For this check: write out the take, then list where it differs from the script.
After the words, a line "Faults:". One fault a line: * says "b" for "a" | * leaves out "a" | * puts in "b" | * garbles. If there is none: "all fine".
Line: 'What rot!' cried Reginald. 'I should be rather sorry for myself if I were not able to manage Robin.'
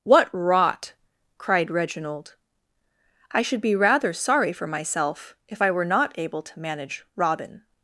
'What rot!' cried Reginald. 'I should be rather sorry for myself if I were not able to manage Robin.'
Faults:
all fine